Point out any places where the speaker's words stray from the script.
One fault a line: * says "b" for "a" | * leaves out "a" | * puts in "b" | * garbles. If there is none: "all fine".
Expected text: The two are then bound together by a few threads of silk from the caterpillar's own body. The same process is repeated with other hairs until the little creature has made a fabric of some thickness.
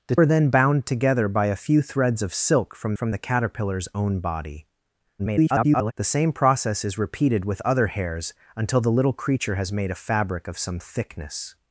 * leaves out "two"
* puts in "from"
* garbles